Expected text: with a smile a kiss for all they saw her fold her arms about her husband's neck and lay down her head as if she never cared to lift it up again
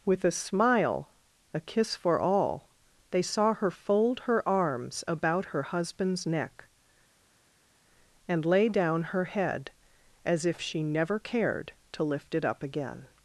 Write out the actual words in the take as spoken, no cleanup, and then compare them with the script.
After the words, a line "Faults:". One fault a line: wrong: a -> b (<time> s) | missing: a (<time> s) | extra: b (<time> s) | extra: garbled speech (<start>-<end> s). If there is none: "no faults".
with a smile a kiss for all they saw her fold her arms about her husband's neck and lay down her head as if she never cared to lift it up again
Faults:
no faults